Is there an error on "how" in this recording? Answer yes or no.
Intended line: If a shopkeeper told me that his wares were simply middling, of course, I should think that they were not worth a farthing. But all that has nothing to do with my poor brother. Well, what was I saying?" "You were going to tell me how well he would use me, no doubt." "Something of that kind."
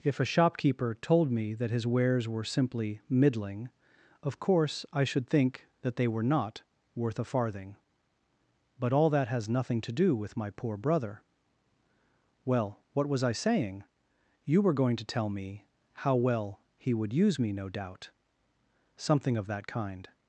no